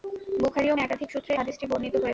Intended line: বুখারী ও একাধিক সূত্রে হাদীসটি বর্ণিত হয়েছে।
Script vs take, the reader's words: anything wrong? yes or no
no